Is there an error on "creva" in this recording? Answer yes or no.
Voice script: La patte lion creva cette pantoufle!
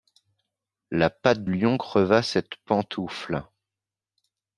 no